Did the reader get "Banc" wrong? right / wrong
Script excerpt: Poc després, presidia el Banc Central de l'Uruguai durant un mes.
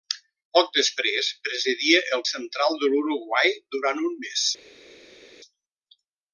wrong